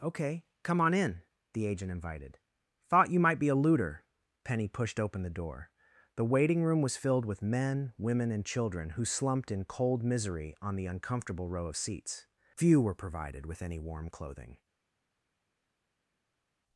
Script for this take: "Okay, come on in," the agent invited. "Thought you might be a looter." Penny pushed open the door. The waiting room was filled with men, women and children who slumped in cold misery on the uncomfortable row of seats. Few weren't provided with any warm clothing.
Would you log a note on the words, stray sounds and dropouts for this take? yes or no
yes